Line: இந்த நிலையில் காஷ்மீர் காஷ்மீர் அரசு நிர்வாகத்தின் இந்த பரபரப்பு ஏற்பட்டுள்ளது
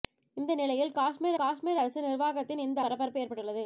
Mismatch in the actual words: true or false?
false